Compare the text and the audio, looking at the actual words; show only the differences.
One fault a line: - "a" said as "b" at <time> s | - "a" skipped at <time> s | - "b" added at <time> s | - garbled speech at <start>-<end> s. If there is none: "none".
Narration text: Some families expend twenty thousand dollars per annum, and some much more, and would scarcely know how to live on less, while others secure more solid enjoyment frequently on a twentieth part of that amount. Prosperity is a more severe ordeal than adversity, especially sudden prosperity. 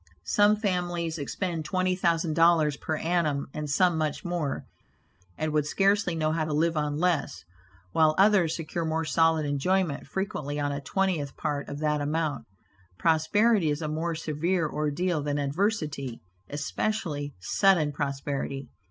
none